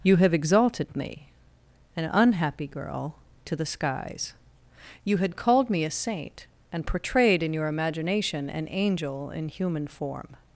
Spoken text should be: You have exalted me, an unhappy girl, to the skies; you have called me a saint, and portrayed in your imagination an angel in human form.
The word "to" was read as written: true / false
true